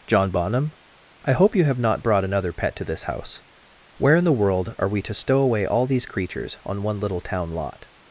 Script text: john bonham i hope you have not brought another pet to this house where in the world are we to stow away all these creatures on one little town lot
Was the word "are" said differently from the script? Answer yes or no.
no